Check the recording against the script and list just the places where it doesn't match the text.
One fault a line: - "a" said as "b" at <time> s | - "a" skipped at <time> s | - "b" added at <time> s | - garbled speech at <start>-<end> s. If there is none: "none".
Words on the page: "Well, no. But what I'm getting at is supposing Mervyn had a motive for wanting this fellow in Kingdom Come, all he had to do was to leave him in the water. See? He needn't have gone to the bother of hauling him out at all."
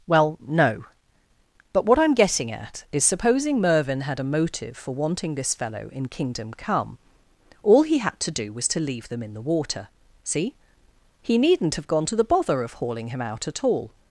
- "him" said as "them" at 9.1 s